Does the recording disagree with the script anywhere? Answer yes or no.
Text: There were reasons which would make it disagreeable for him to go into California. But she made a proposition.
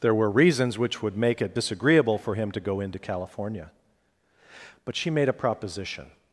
no